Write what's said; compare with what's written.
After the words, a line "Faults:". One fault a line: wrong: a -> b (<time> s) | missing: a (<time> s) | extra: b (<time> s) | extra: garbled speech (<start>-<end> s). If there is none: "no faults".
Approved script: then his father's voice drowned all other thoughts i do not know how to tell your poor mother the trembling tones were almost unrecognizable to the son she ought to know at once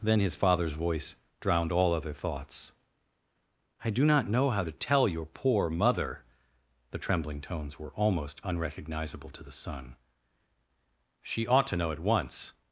then his father's voice drowned all other thoughts i do not know how to tell your poor mother the trembling tones were almost unrecognizable to the son she ought to know at once
Faults:
no faults